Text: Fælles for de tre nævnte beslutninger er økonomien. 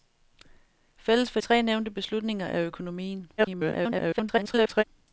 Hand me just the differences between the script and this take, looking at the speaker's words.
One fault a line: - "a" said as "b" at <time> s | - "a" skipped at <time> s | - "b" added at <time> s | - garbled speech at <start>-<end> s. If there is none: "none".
- "de" skipped at 1.4 s
- garbled speech at 3.4-4.8 s